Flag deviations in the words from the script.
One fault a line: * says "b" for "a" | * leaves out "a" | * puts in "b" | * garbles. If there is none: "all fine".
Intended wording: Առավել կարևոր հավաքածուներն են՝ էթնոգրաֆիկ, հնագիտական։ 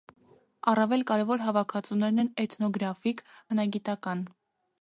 all fine